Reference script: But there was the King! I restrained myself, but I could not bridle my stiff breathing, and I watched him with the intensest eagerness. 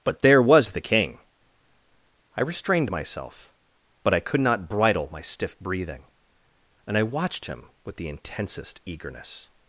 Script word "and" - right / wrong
right